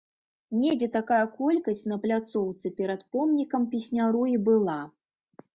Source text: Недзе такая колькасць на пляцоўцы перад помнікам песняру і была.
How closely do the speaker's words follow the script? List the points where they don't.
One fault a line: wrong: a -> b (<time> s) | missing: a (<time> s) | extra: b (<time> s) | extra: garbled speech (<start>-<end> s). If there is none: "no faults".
no faults